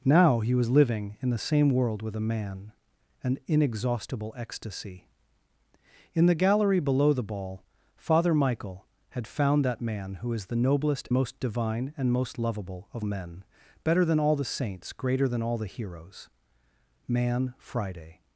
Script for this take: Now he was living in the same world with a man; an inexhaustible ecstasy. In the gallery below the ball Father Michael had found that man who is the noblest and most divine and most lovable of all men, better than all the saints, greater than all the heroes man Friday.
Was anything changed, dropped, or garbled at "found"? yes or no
no